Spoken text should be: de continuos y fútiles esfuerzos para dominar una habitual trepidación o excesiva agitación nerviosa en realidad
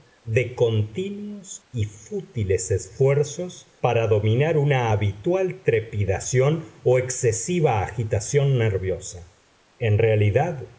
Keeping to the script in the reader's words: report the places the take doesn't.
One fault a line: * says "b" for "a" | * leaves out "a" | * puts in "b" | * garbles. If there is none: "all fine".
all fine